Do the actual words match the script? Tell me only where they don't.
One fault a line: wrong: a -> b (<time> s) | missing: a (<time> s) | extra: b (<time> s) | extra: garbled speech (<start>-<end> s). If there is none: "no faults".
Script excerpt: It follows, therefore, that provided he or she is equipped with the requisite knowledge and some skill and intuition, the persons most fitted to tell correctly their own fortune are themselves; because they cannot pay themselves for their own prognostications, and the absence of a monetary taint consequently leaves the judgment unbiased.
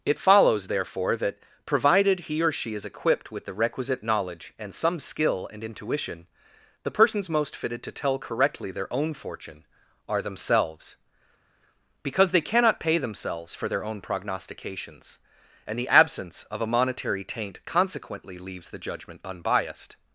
no faults